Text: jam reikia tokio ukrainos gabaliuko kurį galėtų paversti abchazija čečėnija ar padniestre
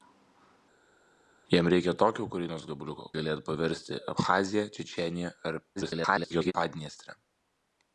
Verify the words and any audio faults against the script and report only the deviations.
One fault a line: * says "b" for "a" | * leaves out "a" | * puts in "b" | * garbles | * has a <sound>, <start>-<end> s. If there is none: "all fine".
* leaves out "kurį"
* garbles